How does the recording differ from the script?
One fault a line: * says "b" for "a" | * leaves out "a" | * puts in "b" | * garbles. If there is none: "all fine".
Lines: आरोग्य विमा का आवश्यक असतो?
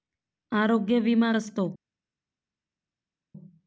* leaves out "का आवश्यक"